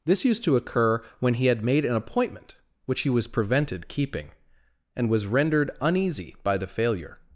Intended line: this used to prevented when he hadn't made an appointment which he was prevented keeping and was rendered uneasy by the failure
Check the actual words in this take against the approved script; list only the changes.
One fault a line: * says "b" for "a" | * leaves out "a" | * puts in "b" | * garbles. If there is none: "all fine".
* says "occur" for "prevented"
* says "had" for "hadn't"